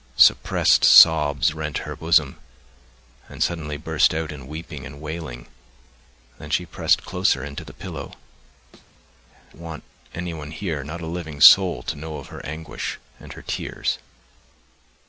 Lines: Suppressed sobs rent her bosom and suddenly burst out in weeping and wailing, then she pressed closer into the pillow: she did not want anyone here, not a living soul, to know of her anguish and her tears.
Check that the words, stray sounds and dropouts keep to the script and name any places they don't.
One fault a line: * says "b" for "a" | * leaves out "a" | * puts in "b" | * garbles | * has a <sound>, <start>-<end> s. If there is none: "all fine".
* leaves out "she did not"
* has a thud, 8.7-8.9 s